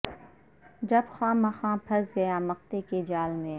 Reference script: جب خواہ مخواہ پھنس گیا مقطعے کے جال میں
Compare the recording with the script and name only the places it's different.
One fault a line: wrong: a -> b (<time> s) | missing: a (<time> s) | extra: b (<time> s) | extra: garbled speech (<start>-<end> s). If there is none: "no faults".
no faults